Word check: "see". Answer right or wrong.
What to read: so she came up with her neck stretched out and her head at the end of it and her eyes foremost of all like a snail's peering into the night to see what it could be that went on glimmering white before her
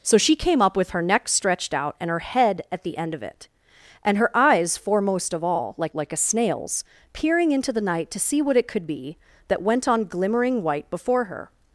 right